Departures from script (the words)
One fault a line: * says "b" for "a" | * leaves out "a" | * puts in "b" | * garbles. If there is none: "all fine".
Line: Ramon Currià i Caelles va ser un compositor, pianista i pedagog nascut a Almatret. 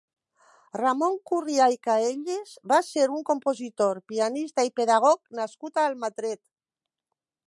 all fine